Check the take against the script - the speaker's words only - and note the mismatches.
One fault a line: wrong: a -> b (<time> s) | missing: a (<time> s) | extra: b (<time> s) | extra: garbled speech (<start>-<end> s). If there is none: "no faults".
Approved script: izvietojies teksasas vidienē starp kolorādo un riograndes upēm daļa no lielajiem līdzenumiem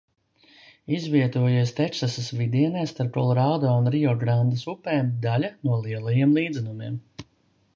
no faults